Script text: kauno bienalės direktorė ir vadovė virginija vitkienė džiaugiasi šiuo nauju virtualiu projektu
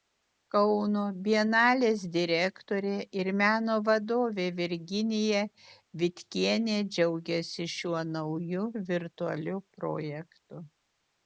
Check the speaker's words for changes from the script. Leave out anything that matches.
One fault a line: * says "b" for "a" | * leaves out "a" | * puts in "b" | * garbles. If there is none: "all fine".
* puts in "meno"